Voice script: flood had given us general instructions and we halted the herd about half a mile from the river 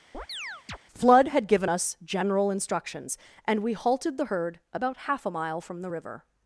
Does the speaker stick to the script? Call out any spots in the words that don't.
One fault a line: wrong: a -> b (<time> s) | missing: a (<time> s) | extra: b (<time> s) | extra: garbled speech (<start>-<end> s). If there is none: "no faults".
no faults